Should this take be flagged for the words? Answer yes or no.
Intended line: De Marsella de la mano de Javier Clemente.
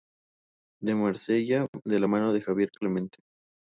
no